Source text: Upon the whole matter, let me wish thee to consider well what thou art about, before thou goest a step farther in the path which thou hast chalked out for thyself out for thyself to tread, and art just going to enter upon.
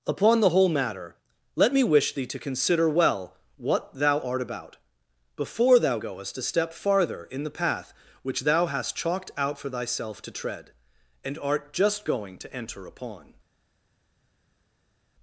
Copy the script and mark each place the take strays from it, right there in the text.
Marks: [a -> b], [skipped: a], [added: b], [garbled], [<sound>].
Upon the whole matter, let me wish thee to consider well what thou art about, before thou goest a step farther in the path which thou hast chalked out for thyself [skipped: out for thyself] to tread, and art just going to enter upon.